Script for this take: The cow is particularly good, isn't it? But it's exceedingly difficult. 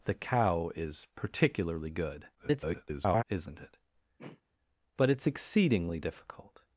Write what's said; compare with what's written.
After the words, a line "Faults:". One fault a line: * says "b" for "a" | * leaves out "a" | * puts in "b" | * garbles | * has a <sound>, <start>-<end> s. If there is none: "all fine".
The cow is particularly good, [garbled] isn't it? But it's exceedingly difficult.
Faults:
* garbles
* has a throat clearing, 4.2-4.4 s